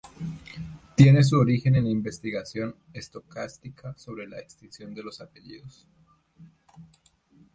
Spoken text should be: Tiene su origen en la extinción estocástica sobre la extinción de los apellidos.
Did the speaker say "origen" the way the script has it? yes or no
yes